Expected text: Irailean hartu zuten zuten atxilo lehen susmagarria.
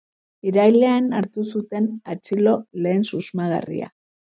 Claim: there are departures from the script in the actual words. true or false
true